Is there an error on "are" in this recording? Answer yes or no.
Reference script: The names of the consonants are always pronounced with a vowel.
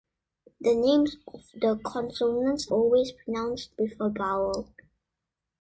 yes